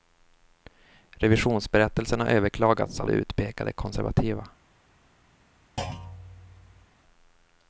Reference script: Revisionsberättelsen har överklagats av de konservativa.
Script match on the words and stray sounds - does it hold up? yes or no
no